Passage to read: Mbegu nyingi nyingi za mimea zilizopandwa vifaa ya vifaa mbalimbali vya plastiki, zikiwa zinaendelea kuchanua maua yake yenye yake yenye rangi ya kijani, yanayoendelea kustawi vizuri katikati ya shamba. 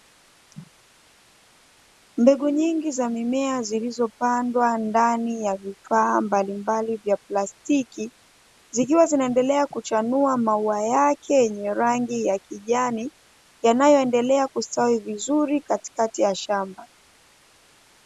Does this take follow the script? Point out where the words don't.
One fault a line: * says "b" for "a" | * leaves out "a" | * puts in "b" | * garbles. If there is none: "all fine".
* leaves out "nyingi"
* says "ndani" for "vifaa"
* leaves out "yake yenye"